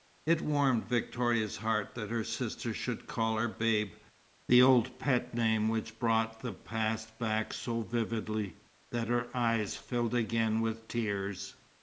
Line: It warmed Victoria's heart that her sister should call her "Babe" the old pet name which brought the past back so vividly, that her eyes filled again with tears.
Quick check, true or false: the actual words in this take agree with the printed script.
true